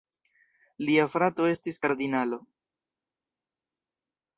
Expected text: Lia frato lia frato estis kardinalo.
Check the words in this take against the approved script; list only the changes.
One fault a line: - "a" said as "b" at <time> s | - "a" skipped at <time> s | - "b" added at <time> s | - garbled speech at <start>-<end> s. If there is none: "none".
- "lia frato" skipped at 1.5 s